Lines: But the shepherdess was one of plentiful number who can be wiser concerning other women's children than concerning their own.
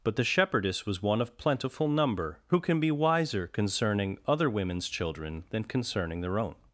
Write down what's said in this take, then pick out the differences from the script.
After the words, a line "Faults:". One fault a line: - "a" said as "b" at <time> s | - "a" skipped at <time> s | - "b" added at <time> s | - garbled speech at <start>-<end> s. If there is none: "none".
But the shepherdess was one of plentiful number who can be wiser concerning other women's children than concerning their own.
Faults:
none